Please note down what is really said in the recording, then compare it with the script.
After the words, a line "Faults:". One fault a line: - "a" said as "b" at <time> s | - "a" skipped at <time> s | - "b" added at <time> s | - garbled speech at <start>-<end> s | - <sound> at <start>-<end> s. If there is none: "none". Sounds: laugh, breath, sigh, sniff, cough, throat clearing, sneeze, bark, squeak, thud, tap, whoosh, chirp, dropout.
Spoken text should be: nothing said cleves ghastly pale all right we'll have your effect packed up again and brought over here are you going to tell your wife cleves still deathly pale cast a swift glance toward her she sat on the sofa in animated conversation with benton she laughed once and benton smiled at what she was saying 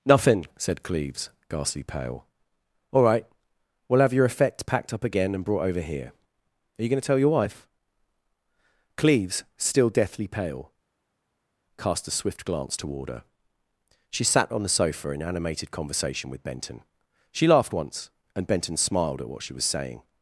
nothing said cleves ghastly pale all right we'll have your effect packed up again and brought over here are you going to tell your wife cleves still deathly pale cast a swift glance toward her she sat on the sofa in animated conversation with benton she laughed once and benton smiled at what she was saying
Faults:
none